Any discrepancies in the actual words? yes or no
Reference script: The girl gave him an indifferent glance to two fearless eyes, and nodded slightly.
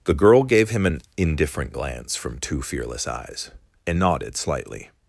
yes